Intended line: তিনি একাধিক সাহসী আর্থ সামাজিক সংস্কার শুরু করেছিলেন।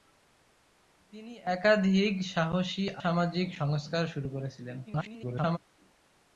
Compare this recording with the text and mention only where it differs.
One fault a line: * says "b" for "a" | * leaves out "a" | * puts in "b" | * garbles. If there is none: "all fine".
* leaves out "আর্থ"
* garbles